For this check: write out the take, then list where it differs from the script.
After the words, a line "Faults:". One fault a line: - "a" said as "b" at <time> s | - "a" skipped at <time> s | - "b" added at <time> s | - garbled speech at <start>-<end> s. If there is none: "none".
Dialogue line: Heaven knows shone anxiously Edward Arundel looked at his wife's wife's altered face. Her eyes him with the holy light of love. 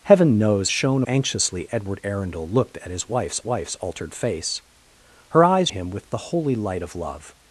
Heaven knows shone anxiously Edward Arundel looked at his wife's wife's altered face. Her eyes him with the holy light of love.
Faults:
none